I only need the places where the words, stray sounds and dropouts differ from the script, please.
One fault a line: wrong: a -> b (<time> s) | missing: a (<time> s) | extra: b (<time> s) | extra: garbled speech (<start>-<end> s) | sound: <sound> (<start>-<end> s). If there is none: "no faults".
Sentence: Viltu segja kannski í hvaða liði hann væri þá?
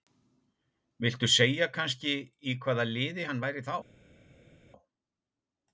no faults